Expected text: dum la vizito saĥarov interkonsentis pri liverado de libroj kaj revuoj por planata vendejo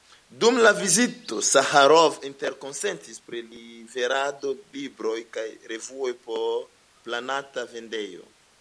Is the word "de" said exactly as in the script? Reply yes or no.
no